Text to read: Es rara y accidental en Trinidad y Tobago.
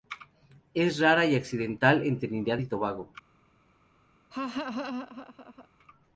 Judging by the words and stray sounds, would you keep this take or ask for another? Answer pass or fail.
fail